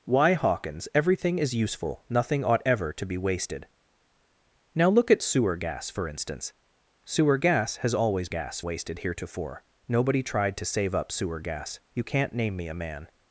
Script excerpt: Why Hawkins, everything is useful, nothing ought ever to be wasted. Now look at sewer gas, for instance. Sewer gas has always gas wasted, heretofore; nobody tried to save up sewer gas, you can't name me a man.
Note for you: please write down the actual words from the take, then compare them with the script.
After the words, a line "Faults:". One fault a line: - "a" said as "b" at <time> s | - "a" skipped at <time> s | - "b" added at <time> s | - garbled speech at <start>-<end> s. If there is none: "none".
Why Hawkins, everything is useful, nothing ought ever to be wasted. Now look at sewer gas, for instance. Sewer gas has always gas wasted, heretofore; nobody tried to save up sewer gas, you can't name me a man.
Faults:
none